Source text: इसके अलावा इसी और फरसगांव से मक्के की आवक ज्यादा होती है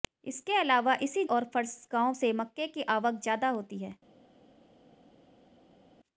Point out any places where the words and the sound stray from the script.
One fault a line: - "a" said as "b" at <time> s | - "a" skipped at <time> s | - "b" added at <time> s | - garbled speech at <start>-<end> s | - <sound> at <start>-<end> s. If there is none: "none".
none